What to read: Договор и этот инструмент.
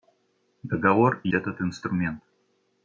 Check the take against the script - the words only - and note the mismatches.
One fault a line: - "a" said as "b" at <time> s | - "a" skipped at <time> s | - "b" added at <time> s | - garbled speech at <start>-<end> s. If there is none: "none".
none